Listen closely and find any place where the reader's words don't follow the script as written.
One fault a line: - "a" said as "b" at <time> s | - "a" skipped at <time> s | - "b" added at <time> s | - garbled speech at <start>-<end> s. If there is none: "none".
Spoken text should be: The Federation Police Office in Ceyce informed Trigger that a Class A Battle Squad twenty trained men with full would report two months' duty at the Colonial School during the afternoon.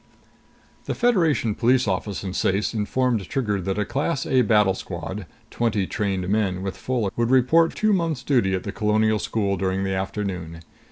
none